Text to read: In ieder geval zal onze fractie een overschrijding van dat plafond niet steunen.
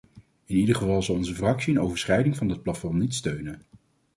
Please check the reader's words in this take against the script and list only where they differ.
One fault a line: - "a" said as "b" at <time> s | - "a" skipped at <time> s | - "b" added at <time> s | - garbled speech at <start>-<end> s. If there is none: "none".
none